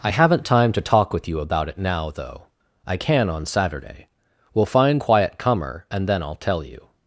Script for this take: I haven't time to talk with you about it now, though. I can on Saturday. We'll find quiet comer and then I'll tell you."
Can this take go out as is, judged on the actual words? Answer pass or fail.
pass